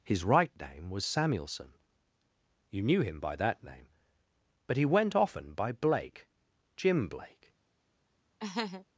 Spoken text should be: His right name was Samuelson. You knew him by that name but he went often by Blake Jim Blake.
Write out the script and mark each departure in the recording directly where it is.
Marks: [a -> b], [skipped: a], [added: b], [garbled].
His right name was Samuelson. You knew him by that name but he went often by Blake Jim Blake.